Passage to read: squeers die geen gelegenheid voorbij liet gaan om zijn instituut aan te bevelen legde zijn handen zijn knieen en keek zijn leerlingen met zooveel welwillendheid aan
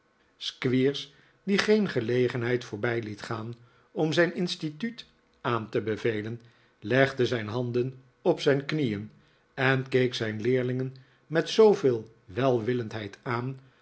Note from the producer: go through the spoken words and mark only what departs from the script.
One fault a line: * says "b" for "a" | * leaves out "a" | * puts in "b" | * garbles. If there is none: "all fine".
* puts in "op"